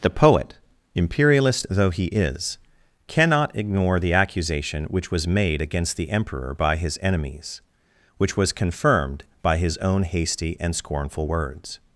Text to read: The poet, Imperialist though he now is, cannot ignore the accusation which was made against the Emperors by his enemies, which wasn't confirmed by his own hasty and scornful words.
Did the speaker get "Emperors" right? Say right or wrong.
wrong